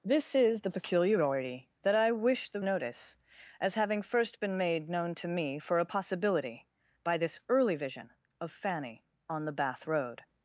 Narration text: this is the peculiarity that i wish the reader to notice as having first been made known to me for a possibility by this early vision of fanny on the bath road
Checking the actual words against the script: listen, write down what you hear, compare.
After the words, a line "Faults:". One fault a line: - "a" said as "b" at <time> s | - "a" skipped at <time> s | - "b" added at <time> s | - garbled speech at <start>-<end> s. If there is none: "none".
this is the peculiarity that i wish the notice as having first been made known to me for a possibility by this early vision of fanny on the bath road
Faults:
- "reader to" skipped at 2.6 s